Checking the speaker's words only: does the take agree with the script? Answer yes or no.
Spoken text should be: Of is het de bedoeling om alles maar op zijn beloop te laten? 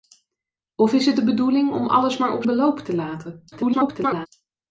no